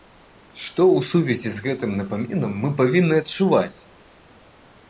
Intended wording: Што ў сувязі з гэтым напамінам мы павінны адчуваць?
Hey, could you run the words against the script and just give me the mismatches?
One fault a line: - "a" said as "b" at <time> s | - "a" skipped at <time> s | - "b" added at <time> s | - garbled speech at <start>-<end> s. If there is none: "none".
none